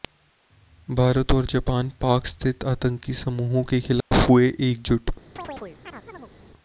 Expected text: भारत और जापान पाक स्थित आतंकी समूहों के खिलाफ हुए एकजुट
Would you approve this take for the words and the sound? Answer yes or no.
no